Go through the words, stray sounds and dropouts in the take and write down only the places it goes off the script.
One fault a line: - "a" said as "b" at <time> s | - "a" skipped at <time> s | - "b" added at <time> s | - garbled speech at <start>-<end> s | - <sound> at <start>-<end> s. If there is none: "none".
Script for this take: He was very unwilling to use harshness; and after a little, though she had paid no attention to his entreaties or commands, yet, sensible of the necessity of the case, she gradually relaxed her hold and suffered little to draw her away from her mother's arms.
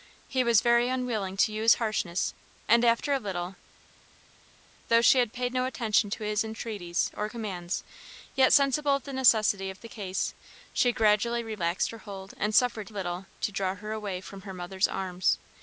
none